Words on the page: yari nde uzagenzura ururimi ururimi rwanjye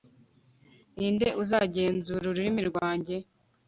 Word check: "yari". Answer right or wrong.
wrong